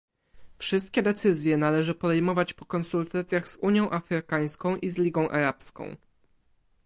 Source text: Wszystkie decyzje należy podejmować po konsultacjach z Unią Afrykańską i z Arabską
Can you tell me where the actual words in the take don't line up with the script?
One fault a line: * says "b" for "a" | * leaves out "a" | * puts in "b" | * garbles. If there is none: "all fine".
* puts in "Ligą"